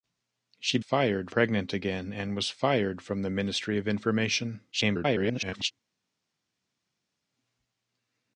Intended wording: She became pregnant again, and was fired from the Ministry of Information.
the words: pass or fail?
fail